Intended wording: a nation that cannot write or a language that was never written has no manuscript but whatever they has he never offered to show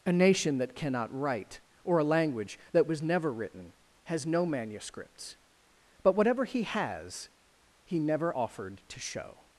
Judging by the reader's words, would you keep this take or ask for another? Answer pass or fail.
fail